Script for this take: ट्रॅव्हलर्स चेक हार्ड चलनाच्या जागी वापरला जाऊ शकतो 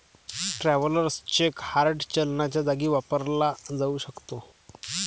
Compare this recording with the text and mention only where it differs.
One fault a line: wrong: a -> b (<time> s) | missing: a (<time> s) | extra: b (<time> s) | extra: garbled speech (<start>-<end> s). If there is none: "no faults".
no faults